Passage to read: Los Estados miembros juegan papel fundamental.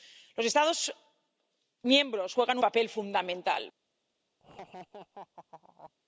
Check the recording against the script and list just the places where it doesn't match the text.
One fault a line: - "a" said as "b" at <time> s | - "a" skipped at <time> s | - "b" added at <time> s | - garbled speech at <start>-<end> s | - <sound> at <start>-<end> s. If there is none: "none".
- laugh at 4.4-5.9 s